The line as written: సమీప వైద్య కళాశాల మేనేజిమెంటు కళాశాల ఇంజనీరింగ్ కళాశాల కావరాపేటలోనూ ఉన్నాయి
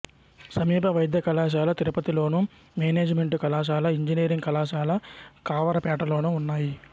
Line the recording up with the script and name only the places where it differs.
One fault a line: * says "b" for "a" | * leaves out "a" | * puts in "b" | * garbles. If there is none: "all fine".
* puts in "తిరుపతిలోను"